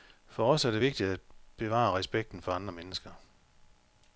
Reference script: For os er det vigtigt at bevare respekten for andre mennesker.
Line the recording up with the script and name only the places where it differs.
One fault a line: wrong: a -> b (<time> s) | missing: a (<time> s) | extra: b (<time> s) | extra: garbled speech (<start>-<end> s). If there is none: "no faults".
no faults